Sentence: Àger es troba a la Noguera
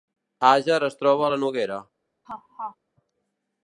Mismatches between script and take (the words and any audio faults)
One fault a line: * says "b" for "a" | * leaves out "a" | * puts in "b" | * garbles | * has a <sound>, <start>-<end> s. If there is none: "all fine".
* has a laugh, 2.2-2.8 s